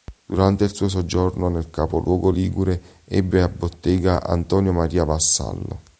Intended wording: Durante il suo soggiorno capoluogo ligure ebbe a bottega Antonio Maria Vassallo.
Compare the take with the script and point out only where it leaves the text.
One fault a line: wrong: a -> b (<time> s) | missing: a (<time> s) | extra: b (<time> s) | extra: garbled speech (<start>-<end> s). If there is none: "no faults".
extra: nel (1.5 s)